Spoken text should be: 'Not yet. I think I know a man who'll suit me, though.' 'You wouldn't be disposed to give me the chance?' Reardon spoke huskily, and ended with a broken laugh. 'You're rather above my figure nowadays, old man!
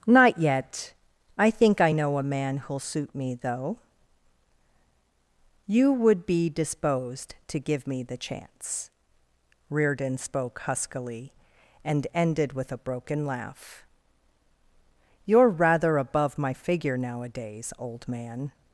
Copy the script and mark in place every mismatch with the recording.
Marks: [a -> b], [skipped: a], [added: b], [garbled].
'Not yet. I think I know a man who'll suit me, though.' 'You [wouldn't -> would] be disposed to give me the chance?' Reardon spoke huskily, and ended with a broken laugh. 'You're rather above my figure nowadays, old man!